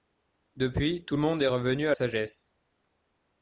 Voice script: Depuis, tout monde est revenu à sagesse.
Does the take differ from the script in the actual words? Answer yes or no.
no